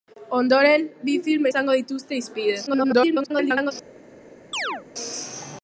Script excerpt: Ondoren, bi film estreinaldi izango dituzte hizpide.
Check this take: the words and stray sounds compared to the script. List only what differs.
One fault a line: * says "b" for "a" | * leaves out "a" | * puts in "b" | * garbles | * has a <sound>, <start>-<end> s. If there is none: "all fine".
* leaves out "estreinaldi"
* garbles
* has a chirp, 4.5-4.8 s